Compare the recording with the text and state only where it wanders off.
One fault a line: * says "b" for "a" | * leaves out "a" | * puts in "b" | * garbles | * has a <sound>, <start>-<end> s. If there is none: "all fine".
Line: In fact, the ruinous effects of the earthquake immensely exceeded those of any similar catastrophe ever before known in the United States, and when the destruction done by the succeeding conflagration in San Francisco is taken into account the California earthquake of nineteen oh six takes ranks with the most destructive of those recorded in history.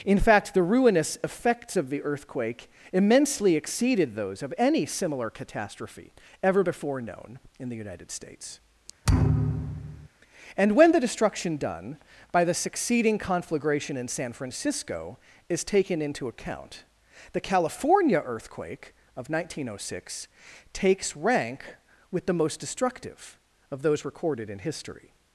* has a thud, 9.0-10.1 s
* says "rank" for "ranks"